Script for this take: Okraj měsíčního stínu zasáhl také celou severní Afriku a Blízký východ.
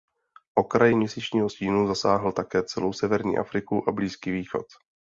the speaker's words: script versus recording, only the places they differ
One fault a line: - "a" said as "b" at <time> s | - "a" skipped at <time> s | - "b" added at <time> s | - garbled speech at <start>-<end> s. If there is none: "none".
none